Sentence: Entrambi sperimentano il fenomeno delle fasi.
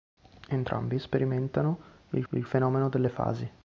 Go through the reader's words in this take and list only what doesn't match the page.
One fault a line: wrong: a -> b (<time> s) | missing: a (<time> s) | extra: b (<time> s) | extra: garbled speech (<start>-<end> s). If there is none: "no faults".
extra: il (2.3 s)